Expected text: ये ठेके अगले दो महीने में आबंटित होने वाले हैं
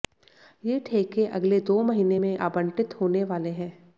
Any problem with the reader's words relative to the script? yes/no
no